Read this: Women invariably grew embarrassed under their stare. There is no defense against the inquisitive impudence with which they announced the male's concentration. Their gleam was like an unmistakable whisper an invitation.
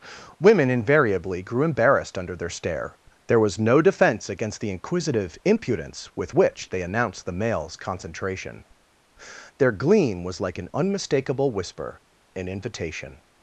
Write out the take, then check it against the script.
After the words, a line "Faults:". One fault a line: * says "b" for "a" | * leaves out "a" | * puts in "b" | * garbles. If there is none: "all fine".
Women invariably grew embarrassed under their stare. There was no defense against the inquisitive impudence with which they announced the male's concentration. Their gleam was like an unmistakable whisper an invitation.
Faults:
* says "was" for "is"